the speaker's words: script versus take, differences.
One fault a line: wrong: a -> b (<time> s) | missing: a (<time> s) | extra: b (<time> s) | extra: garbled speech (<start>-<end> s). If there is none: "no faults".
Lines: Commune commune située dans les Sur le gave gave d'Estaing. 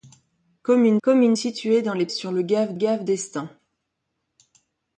no faults